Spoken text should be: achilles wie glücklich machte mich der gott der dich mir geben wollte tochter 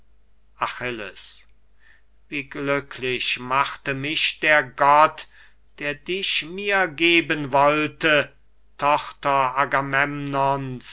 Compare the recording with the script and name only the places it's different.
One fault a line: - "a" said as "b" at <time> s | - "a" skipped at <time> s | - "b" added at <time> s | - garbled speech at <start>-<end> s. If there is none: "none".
none